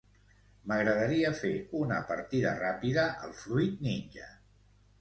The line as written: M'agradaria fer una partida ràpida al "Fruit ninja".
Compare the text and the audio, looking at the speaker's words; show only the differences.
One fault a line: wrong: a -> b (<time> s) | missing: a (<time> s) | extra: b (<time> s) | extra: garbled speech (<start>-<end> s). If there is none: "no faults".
no faults